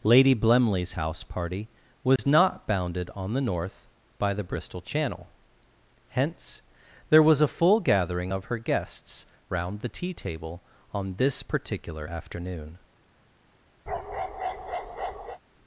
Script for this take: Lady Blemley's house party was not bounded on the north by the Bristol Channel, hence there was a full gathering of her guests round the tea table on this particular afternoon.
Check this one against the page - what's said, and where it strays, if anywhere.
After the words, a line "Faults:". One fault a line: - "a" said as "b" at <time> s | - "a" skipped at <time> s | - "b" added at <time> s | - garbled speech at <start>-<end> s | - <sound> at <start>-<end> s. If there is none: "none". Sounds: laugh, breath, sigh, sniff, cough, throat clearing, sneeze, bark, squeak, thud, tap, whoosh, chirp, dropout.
Lady Blemley's house party was not bounded on the north by the Bristol Channel, hence there was a full gathering of her guests round the tea table on this particular afternoon.
Faults:
- dropout at 2.2-2.2 s
- bark at 13.9-15.4 s